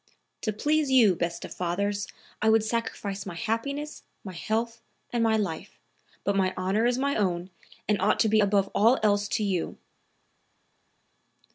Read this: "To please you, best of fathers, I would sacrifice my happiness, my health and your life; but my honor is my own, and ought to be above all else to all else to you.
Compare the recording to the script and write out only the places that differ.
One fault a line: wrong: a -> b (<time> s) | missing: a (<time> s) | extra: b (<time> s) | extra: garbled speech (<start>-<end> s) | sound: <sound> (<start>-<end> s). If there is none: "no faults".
wrong: your -> my (5.2 s)
missing: all else to (9.4 s)